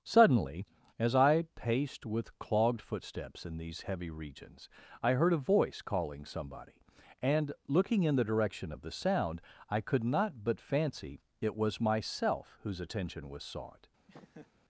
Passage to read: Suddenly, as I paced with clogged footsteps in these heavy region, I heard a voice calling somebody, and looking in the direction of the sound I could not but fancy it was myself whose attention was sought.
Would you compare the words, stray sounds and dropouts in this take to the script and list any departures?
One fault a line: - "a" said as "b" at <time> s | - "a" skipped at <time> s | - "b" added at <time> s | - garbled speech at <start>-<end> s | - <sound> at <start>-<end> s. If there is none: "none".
- "region" said as "regions" at 4.1 s
- laugh at 14.1-14.5 s